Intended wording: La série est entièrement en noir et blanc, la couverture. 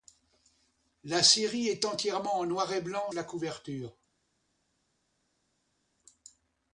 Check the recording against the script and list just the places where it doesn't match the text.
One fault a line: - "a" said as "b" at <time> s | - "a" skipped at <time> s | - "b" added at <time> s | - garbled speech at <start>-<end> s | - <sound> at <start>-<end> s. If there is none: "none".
none